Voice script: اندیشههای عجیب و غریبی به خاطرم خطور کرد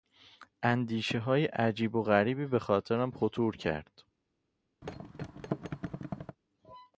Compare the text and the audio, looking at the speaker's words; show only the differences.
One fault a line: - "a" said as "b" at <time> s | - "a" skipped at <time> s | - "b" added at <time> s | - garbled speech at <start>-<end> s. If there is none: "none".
none